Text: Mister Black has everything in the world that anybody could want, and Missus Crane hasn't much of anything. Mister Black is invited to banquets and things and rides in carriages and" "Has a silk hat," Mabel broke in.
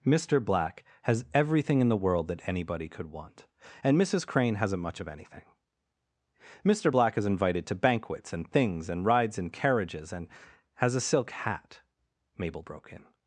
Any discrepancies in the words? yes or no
no